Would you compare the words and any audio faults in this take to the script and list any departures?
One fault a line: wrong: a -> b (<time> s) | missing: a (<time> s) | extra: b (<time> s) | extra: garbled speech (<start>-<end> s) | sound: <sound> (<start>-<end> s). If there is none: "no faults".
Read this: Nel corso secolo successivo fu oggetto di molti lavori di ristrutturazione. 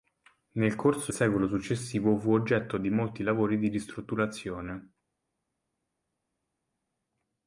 no faults